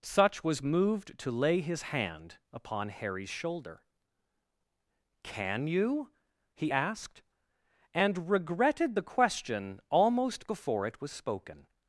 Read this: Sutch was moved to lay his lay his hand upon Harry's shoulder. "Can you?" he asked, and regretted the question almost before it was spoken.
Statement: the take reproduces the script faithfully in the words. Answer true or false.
false